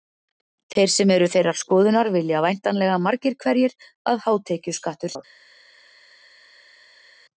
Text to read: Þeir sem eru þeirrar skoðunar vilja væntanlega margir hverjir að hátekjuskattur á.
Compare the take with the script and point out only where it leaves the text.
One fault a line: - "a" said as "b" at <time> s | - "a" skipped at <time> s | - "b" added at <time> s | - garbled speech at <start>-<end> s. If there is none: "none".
none